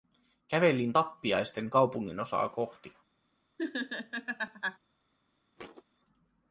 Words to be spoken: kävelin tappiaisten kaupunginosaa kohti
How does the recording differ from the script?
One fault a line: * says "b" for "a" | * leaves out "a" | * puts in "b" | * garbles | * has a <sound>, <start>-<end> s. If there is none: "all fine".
* has a laugh, 3.6-4.8 s
* has a thud, 5.6-5.8 s